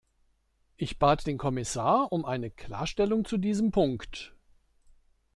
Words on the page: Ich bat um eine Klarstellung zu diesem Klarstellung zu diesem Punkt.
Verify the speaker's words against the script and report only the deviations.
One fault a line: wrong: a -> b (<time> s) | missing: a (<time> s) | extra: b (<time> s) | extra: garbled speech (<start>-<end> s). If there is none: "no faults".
extra: den Kommissar (1.2 s)
missing: Klarstellung zu diesem (3.7 s)